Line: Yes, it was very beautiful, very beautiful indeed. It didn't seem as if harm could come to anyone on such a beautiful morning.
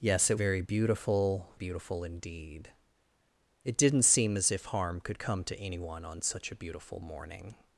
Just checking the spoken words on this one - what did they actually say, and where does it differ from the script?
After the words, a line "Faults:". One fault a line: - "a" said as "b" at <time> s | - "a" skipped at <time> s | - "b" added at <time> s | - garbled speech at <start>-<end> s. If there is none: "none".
Yes, it very beautiful, beautiful indeed. It didn't seem as if harm could come to anyone on such a beautiful morning.
Faults:
- "was" skipped at 0.4 s
- "very" skipped at 1.5 s